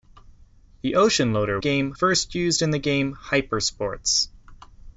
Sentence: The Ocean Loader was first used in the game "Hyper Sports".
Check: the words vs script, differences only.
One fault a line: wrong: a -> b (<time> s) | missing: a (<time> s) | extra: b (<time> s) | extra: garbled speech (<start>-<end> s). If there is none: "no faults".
wrong: was -> game (1.6 s)